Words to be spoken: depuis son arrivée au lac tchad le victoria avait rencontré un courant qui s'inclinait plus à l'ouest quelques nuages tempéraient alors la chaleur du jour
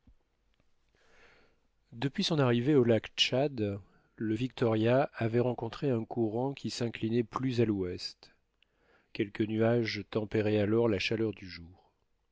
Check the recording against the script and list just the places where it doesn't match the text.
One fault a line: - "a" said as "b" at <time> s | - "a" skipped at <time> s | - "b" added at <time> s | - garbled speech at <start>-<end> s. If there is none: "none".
none